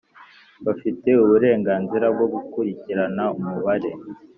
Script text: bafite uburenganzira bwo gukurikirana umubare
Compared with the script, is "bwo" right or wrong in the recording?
right